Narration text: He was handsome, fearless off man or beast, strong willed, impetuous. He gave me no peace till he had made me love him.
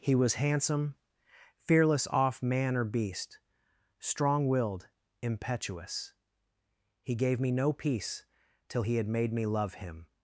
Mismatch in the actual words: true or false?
false